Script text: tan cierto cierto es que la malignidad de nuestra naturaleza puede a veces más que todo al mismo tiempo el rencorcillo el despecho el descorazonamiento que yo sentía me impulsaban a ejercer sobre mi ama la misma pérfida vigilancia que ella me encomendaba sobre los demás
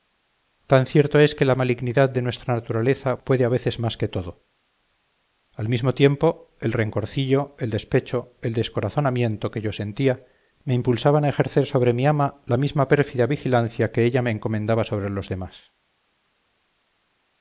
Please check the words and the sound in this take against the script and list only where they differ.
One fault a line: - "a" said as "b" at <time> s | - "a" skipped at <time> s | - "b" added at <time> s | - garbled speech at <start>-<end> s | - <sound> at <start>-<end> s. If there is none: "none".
- "cierto" skipped at 1.2 s